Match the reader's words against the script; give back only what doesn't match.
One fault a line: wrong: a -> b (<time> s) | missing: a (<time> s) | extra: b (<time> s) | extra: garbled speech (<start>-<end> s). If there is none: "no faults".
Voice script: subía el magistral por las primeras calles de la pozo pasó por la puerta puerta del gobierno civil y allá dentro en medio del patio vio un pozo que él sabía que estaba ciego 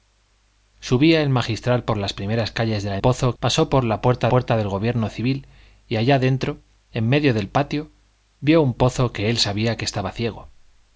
no faults